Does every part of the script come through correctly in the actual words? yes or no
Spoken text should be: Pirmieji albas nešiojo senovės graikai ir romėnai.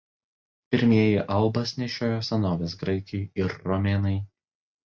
yes